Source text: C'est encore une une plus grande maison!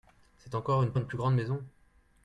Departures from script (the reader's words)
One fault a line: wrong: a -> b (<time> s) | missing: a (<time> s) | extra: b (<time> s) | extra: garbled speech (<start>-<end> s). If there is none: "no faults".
no faults